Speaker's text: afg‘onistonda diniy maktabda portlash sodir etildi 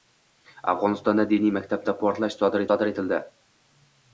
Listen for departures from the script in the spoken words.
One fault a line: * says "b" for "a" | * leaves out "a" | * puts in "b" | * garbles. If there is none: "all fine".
* puts in "sodir"